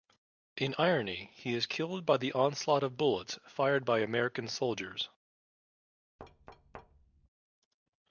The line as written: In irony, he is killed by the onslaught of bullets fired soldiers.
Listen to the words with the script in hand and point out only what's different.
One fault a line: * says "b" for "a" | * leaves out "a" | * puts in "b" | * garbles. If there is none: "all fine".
* puts in "by American"